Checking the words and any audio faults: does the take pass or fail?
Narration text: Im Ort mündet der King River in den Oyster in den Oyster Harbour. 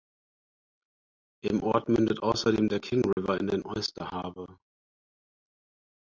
fail